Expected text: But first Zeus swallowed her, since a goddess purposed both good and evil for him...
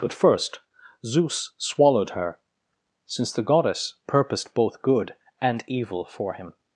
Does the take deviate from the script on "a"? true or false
true